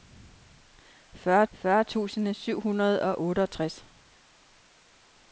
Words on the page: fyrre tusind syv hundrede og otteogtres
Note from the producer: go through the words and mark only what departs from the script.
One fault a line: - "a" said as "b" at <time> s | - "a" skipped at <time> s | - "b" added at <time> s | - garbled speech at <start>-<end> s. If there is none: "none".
- "fyrre" added at 1.5 s